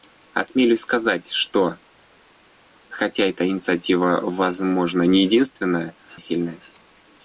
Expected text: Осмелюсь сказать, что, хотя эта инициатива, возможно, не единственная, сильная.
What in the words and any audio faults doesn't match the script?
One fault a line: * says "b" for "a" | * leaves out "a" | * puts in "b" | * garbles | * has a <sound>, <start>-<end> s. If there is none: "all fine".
all fine